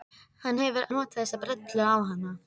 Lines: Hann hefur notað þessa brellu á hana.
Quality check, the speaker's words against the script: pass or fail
pass